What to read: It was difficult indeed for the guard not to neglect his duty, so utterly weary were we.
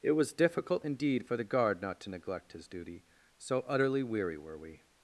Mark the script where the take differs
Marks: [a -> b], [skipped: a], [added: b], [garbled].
It was difficult indeed for the guard not to neglect his duty, so utterly weary were we.